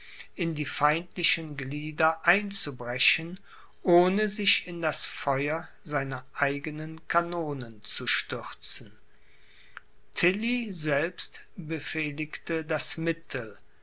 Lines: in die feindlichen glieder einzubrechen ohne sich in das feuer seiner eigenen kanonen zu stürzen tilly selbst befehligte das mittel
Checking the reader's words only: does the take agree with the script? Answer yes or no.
yes